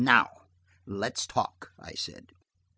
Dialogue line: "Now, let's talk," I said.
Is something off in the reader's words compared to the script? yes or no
no